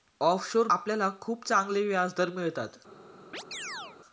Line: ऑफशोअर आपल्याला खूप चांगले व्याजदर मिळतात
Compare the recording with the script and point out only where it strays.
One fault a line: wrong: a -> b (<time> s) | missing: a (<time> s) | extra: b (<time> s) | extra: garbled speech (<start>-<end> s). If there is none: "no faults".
no faults